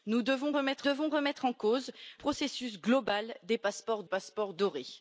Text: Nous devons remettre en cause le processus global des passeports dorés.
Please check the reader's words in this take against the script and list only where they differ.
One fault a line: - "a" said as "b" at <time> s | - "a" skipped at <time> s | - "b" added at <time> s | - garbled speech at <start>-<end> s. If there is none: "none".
- "devons remettre" added at 0.8 s
- "le" skipped at 1.9 s
- "passeports" added at 4.1 s